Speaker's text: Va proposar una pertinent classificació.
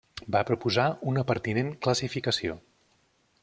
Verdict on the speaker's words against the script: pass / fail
pass